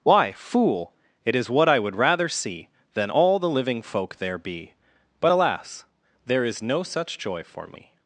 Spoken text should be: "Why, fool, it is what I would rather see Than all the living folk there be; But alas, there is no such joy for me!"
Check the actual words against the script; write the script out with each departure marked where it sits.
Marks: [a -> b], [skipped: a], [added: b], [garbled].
"Why, fool, it is what I would rather see Than all the living folk there be; But alas, there is no such joy for me!"